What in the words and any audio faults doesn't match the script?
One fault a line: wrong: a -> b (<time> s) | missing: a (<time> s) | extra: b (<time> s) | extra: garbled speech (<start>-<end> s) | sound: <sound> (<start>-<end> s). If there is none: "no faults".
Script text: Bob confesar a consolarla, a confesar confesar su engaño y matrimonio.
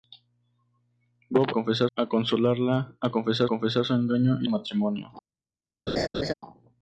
sound: laugh (5.9-6.3 s)